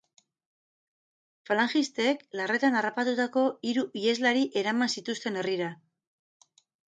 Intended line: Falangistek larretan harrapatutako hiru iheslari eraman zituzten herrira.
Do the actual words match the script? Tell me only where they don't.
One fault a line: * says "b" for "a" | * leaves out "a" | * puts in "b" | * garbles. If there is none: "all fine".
all fine